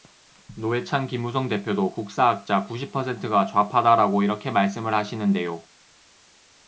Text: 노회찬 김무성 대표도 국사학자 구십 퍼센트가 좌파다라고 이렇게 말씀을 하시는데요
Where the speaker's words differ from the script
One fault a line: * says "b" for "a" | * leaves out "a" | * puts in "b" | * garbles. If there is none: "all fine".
all fine